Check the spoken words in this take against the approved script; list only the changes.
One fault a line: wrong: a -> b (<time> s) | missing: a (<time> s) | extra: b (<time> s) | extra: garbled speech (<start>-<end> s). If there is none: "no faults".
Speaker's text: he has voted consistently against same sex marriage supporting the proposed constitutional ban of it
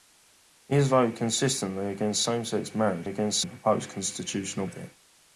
wrong: supporting -> against (3.0 s)
missing: ban (4.6 s)